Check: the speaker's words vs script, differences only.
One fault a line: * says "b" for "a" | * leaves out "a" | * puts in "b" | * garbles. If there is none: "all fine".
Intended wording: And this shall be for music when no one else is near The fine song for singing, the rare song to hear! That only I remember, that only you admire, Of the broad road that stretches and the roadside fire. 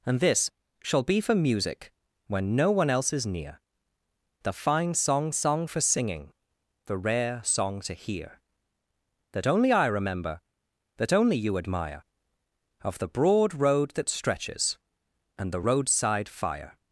* puts in "song"